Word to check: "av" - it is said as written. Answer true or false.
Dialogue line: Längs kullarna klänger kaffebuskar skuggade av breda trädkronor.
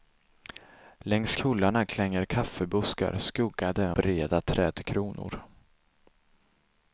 false